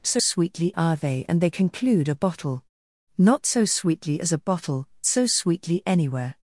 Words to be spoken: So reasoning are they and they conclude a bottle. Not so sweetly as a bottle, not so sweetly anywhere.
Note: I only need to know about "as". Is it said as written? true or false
true